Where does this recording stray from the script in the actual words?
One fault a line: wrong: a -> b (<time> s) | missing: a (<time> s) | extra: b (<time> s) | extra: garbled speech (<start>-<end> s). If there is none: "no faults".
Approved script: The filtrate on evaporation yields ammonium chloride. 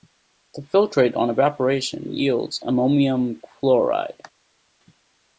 no faults